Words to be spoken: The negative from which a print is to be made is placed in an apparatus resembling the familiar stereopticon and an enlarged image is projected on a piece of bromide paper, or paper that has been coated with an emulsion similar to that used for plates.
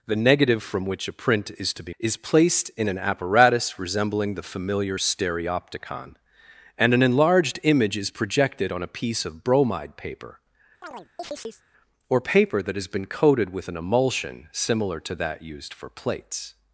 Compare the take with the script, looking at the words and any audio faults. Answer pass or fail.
fail